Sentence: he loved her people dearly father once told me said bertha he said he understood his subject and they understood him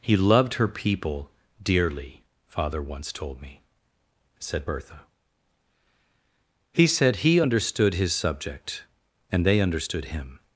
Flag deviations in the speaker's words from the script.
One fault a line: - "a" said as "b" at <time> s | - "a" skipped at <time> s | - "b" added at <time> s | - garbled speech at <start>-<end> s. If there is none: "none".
none